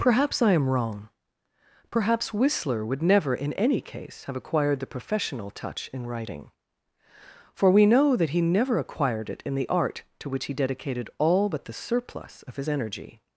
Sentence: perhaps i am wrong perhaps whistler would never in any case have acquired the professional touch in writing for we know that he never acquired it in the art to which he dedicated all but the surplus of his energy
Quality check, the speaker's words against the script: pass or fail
pass